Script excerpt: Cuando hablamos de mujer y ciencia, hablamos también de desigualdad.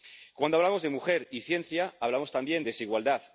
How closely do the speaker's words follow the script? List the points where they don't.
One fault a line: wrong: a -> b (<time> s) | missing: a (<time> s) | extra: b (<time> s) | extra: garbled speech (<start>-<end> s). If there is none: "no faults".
missing: de (2.6 s)